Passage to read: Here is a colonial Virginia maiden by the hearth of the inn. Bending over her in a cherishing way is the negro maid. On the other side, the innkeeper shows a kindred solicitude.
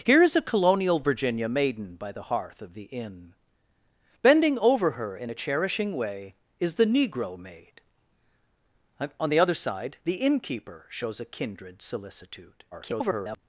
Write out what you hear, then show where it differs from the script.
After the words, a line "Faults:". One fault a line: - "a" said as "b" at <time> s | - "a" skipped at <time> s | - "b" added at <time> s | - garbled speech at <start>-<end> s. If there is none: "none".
Here is a colonial Virginia maiden by the hearth of the inn. Bending over her in a cherishing way is the negro maid. On the other side, the innkeeper shows a kindred solicitude. [garbled]
Faults:
- garbled speech at 12.7-13.4 s